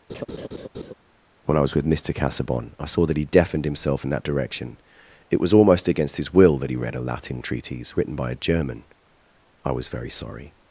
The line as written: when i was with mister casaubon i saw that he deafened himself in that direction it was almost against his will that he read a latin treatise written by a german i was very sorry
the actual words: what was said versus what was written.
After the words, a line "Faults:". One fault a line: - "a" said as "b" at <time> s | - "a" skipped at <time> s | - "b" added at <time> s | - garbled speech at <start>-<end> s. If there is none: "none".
when i was with mister casaubon i saw that he deafened himself in that direction it was almost against his will that he read a latin treatise written by a german i was very sorry
Faults:
none